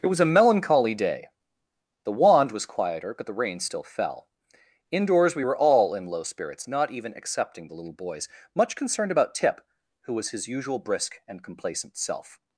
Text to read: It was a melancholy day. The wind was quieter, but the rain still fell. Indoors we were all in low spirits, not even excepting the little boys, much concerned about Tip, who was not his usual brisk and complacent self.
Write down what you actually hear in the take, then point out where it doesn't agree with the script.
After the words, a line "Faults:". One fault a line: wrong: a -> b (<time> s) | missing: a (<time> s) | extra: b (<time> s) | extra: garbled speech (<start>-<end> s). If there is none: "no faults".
It was a melancholy day. The wand was quieter, but the rain still fell. Indoors we were all in low spirits, not even excepting the little boys, much concerned about Tip, who was his usual brisk and complacent self.
Faults:
wrong: wind -> wand (2.1 s)
missing: not (10.3 s)